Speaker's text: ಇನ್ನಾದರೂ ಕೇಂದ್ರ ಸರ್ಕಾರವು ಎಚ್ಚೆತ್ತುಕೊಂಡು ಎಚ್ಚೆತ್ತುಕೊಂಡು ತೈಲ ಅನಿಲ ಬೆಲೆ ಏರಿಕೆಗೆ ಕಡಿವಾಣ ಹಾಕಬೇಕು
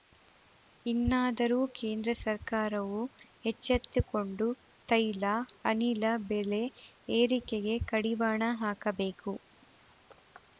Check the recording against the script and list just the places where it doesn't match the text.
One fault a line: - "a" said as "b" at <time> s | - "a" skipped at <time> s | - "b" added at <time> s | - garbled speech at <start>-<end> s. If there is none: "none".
- "ಎಚ್ಚೆತ್ತುಕೊಂಡು" skipped at 4.5 s